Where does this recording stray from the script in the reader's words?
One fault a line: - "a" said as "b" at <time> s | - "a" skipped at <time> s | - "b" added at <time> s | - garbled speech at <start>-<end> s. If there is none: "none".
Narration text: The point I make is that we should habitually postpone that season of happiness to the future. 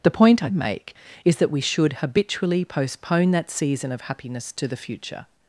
none